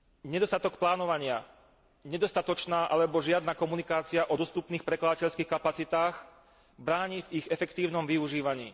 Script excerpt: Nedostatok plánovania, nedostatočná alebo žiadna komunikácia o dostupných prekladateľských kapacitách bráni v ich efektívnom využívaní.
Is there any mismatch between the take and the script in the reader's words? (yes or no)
no